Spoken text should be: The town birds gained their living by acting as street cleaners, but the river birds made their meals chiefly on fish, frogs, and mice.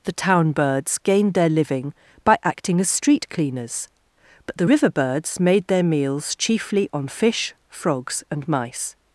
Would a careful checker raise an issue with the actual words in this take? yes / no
no